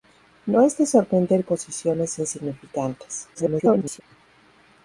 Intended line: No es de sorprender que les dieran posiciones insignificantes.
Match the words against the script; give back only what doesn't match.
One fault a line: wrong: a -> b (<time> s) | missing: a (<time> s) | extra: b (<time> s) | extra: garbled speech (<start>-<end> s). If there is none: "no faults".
missing: que les dieran (1.4 s)
extra: garbled speech (3.3-4.0 s)